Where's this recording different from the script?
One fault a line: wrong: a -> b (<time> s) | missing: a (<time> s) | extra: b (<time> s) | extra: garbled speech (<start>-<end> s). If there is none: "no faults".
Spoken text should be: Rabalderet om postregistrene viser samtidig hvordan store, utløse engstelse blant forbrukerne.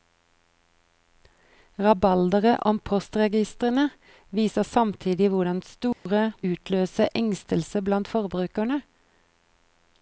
no faults